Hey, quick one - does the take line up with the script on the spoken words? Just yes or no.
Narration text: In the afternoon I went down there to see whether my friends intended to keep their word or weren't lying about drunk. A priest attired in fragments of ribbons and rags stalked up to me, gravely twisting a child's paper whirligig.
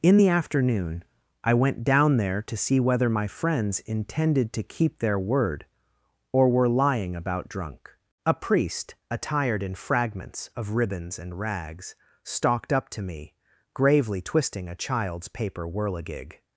no